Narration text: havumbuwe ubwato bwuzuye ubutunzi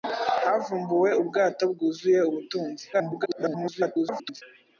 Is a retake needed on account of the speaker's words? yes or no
yes